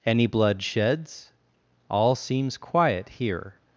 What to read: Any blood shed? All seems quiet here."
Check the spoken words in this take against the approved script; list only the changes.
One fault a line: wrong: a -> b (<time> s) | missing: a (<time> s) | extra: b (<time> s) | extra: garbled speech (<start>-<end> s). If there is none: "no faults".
wrong: shed -> sheds (0.6 s)